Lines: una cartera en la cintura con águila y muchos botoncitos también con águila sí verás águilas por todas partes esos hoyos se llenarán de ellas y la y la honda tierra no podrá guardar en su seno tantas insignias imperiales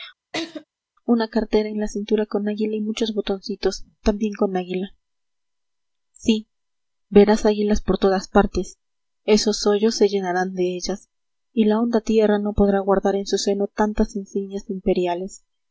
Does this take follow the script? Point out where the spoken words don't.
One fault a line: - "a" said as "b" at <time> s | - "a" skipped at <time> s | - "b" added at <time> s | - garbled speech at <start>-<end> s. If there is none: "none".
- "y la" skipped at 11.8 s